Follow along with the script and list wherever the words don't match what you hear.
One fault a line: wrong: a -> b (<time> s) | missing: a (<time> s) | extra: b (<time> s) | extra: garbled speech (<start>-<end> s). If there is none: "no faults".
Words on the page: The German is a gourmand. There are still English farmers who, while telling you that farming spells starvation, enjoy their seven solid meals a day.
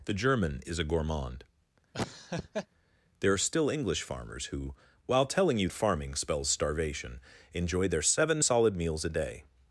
missing: that (5.7 s)